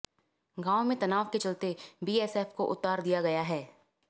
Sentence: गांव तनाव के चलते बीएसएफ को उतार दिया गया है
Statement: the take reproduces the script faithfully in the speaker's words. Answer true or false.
false